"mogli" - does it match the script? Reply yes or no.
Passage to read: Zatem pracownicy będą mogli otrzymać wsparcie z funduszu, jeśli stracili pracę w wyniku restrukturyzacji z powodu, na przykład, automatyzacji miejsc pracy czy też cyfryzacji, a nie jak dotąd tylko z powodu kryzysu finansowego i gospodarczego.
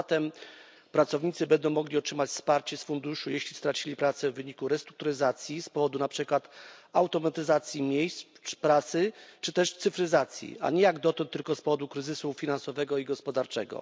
yes